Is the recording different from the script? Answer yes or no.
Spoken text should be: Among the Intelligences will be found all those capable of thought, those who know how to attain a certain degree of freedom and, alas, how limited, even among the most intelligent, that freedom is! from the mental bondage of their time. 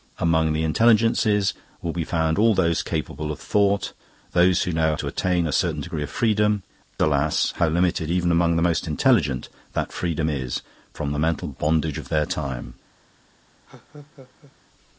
yes